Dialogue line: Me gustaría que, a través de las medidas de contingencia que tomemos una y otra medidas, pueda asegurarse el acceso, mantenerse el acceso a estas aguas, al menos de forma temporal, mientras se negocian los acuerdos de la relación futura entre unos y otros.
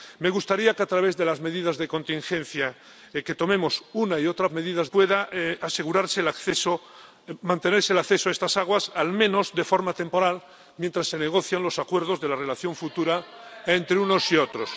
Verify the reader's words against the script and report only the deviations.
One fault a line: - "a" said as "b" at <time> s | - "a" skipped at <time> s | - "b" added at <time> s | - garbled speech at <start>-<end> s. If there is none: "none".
none